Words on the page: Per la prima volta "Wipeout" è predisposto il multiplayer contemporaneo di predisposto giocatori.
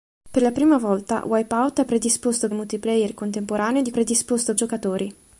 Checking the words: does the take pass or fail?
pass